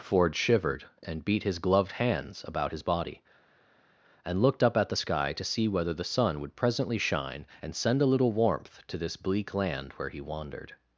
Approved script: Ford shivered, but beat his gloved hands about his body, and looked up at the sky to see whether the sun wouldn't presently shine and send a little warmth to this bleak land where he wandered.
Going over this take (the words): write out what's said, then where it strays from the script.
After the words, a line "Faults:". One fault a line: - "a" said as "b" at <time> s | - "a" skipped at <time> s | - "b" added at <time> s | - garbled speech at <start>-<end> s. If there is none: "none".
Ford shivered, and beat his gloved hands about his body, and looked up at the sky to see whether the sun would presently shine and send a little warmth to this bleak land where he wandered.
Faults:
- "but" said as "and" at 1.0 s
- "wouldn't" said as "would" at 6.4 s